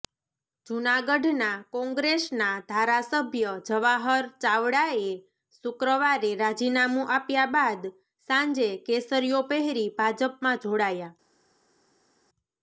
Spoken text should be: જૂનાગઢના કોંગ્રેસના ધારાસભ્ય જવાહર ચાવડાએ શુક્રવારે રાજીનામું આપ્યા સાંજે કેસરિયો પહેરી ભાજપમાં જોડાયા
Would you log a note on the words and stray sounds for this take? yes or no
yes